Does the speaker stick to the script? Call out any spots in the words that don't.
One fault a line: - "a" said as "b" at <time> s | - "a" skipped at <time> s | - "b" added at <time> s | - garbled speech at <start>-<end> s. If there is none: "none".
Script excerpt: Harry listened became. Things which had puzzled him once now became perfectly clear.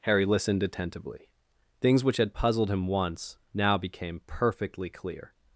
- "became" said as "attentively" at 0.6 s